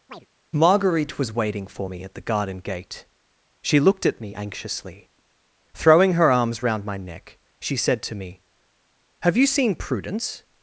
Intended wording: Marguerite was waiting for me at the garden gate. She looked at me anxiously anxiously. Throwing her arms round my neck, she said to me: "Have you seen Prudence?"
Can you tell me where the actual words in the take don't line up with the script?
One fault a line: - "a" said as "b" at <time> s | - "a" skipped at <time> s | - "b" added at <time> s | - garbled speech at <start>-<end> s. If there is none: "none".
- "anxiously" skipped at 5.1 s